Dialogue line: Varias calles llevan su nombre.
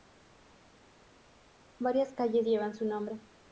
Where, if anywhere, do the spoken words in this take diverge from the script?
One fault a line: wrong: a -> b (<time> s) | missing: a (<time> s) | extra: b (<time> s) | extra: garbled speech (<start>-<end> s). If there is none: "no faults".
no faults